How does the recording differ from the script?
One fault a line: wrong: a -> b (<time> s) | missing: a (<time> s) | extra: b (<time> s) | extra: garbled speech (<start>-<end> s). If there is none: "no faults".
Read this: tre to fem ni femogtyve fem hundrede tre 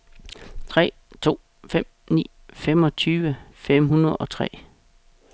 extra: og (4.2 s)